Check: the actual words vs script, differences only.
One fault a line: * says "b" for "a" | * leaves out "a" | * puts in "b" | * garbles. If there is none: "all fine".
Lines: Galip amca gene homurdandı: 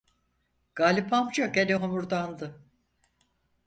all fine